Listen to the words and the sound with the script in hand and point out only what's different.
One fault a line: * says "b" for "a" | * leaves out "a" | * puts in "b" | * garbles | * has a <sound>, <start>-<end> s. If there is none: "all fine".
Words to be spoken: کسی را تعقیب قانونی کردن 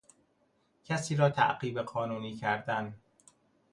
all fine